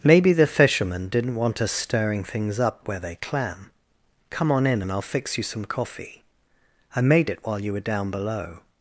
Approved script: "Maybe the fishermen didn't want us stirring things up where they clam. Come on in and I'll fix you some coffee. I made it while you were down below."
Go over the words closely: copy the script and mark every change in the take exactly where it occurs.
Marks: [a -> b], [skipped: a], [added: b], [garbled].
"Maybe the fishermen didn't want us stirring things up where they clam. Come on in and I'll fix you some coffee. I made it while you were down below."